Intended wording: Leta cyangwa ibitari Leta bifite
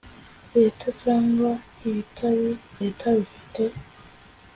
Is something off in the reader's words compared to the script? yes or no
no